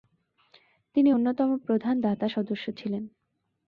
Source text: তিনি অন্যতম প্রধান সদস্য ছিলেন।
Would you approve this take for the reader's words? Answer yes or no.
no